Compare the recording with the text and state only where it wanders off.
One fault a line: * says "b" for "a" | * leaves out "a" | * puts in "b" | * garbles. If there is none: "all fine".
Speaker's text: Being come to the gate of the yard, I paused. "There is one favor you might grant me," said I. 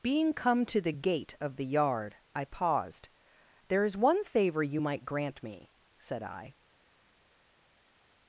all fine